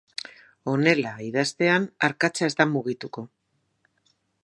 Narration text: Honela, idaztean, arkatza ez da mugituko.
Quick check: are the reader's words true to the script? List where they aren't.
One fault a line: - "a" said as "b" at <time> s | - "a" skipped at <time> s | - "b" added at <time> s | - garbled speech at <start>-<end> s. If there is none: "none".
none